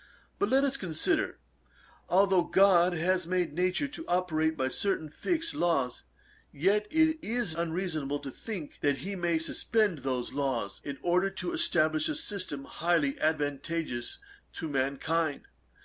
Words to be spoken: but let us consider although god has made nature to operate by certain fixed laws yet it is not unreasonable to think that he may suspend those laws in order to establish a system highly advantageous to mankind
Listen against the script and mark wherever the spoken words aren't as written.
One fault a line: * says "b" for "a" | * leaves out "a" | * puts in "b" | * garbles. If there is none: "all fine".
* leaves out "not"